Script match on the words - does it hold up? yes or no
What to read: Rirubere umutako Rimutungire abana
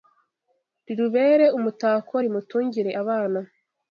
yes